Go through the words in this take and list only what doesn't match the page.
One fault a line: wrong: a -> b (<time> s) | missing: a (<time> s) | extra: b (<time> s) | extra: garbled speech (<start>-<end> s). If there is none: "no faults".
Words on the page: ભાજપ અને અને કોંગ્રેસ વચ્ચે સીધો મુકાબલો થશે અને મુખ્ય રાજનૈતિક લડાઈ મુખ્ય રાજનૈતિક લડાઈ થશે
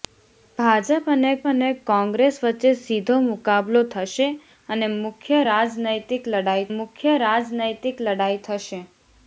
no faults